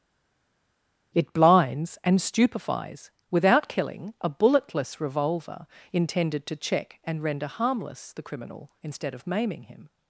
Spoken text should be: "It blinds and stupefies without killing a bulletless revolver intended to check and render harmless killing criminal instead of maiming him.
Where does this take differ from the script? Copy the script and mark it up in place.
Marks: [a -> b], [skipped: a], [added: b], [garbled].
"It blinds and stupefies without killing a bulletless revolver intended to check and render harmless [killing -> the] criminal instead of maiming him.